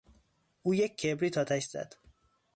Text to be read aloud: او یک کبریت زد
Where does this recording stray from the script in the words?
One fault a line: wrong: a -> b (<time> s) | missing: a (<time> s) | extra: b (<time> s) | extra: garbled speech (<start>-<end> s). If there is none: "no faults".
extra: آتش (1.4 s)